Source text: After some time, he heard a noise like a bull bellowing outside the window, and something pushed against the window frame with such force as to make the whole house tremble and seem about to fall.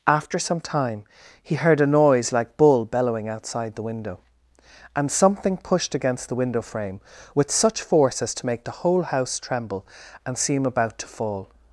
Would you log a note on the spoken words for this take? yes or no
yes